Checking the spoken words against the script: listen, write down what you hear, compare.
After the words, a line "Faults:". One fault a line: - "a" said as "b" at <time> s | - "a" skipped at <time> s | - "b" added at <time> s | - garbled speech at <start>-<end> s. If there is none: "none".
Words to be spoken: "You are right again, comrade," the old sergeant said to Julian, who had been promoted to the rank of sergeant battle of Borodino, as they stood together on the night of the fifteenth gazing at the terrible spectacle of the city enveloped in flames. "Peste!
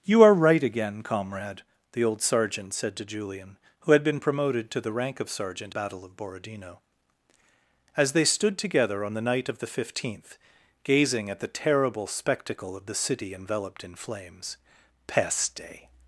"You are right again, comrade," the old sergeant said to Julian, who had been promoted to the rank of sergeant battle of Borodino, as they stood together on the night of the fifteenth gazing at the terrible spectacle of the city enveloped in flames. "Peste!
Faults:
none